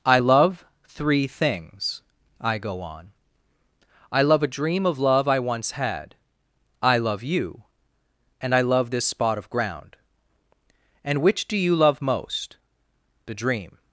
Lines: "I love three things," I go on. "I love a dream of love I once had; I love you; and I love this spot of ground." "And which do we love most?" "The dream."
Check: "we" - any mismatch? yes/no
yes